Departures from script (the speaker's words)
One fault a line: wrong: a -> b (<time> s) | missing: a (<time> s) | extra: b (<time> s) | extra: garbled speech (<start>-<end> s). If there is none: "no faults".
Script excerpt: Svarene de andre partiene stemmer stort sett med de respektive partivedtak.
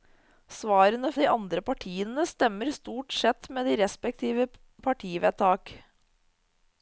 no faults